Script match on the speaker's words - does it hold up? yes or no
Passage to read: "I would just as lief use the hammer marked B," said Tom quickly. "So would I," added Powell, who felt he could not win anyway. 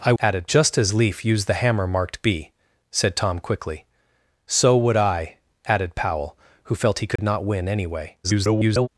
no